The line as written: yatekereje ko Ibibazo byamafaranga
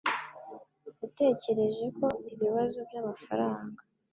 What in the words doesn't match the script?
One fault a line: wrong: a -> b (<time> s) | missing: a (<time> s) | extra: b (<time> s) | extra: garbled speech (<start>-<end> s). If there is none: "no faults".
no faults